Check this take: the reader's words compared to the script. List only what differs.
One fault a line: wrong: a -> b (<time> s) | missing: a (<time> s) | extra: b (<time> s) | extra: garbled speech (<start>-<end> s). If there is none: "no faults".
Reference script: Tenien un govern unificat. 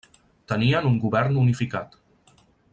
no faults